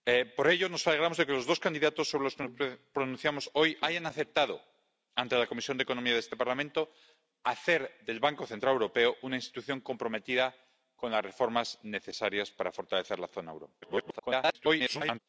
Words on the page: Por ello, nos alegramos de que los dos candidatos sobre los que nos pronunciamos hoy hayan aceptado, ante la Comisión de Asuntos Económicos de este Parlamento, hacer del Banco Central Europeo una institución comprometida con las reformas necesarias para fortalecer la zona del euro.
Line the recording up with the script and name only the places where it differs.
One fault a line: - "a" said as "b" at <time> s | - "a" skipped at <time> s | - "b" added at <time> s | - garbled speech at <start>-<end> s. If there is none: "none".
- garbled speech at 13.8-15.2 s